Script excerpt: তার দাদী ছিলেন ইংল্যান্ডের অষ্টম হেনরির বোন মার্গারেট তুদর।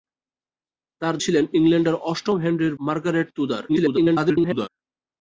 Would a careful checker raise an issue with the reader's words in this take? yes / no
yes